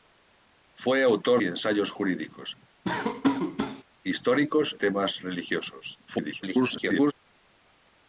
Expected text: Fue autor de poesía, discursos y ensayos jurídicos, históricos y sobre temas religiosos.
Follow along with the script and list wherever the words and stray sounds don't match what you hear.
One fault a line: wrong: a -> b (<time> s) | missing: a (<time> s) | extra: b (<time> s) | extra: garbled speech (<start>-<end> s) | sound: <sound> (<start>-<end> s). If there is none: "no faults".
missing: de poesía discursos (1.4 s)
sound: laugh (2.8-3.8 s)
missing: y sobre (4.8 s)
extra: garbled speech (6.1-7.1 s)